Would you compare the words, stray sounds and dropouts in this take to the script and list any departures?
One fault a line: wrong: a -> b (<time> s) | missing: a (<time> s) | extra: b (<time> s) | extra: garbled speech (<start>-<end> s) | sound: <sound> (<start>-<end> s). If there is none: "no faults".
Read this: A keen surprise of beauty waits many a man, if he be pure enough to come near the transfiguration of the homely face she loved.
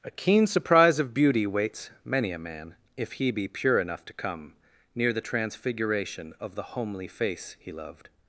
wrong: she -> he (7.6 s)